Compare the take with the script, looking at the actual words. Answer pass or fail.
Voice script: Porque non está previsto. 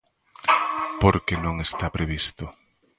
pass